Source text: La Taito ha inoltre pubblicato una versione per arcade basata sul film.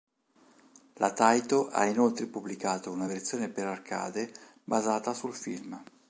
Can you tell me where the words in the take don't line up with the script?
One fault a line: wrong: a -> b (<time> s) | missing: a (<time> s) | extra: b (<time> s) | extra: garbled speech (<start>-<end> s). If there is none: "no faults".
no faults